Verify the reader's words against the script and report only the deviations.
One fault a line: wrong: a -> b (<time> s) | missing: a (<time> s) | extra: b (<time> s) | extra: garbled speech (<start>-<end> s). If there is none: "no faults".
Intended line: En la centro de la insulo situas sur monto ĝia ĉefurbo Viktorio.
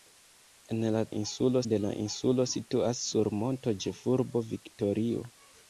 wrong: centro -> insulo (1.2 s)
missing: ĝia (3.7 s)